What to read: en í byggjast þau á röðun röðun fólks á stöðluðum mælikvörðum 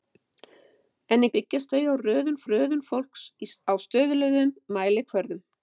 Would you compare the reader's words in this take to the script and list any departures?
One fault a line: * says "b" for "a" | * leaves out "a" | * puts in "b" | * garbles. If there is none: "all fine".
all fine